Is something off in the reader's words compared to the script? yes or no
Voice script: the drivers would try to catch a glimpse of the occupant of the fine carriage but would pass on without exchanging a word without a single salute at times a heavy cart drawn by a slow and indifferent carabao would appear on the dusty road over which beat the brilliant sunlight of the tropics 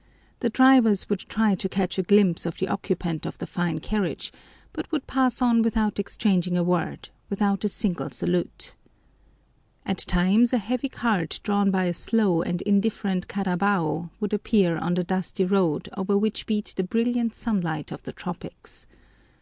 no